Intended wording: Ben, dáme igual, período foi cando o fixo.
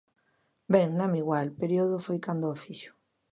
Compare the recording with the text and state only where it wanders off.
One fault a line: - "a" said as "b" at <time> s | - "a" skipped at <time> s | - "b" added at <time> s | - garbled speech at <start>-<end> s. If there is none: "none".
none